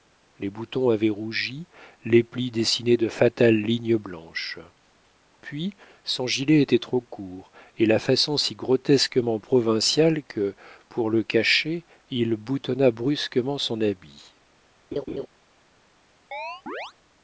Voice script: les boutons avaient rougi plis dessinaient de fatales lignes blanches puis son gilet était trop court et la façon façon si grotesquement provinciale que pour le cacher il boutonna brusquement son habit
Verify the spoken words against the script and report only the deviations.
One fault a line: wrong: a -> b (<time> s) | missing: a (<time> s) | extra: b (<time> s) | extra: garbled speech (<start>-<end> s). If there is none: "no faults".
extra: les (2.0 s)
missing: façon (8.3 s)